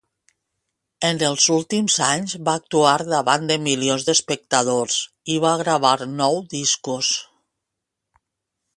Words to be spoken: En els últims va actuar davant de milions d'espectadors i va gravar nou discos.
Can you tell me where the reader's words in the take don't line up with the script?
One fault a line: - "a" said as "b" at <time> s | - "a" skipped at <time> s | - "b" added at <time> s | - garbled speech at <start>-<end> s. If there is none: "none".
- "anys" added at 2.0 s